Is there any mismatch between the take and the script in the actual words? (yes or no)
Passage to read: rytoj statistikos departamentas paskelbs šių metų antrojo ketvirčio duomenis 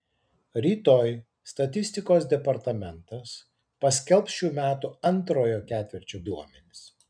no